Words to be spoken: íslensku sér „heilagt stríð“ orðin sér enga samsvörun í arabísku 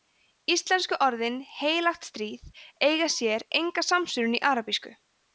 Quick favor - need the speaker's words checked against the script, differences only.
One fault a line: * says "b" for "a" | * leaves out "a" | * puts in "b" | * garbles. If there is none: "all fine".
* says "orðin" for "sér"
* says "eiga" for "orðin"